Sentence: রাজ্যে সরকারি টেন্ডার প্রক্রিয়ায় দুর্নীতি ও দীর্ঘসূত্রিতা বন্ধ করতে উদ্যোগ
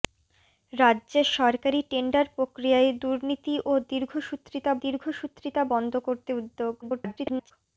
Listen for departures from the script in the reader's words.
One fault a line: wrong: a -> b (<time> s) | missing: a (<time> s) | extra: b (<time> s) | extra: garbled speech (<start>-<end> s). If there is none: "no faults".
extra: দীর্ঘসূত্রিতা (4.8 s)
extra: garbled speech (6.8-7.5 s)